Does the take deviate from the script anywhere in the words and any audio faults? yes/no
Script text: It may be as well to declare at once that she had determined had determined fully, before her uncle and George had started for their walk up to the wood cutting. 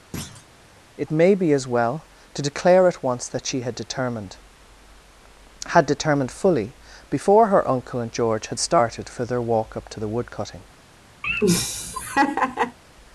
yes